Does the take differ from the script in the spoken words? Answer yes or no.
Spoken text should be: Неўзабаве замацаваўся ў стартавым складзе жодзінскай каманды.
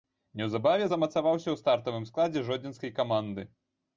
no